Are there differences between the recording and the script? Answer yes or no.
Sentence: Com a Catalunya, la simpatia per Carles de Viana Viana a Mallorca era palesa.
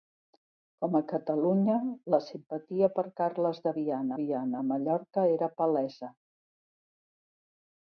no